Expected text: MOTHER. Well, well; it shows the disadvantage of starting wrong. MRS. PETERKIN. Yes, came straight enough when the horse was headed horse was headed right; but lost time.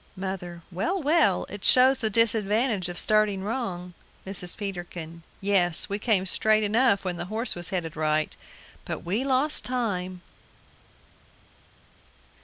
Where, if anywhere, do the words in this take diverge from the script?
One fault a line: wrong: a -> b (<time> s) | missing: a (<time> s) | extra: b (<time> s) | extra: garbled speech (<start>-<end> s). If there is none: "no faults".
extra: we (5.9 s)
missing: horse was headed (8.0 s)
extra: we (9.1 s)